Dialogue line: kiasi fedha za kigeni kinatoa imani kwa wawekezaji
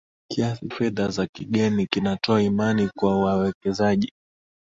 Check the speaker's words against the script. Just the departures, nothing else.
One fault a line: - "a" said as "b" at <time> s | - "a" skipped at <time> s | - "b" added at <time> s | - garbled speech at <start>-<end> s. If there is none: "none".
none